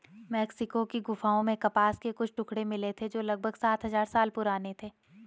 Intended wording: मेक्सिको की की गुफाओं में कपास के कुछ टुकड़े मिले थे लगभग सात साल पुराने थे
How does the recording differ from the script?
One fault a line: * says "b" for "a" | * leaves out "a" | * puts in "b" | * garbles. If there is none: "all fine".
* leaves out "की"
* puts in "जो"
* puts in "हजार"